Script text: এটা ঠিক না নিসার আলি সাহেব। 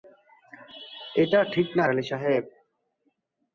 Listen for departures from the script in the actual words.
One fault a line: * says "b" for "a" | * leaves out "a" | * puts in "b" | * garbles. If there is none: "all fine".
* leaves out "নিসার"